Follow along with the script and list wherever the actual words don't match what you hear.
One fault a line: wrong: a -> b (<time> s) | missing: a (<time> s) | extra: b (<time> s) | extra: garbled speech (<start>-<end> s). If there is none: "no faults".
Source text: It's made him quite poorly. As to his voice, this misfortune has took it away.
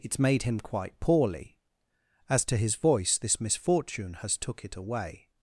no faults